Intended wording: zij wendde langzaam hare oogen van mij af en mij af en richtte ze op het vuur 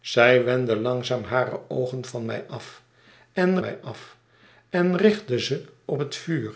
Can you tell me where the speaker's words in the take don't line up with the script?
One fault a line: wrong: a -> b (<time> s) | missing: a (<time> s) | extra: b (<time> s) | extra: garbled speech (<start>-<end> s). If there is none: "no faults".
no faults